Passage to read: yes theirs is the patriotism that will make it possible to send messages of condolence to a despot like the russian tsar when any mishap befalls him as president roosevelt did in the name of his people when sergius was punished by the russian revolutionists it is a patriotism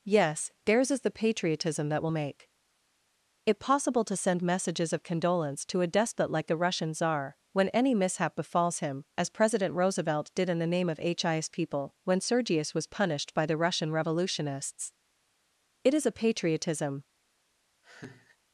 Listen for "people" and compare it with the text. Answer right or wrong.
right